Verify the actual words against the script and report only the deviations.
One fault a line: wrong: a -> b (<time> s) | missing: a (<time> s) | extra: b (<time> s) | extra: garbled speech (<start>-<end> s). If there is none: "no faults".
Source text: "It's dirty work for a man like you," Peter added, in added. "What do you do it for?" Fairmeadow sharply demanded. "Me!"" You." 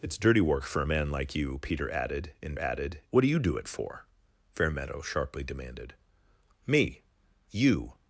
no faults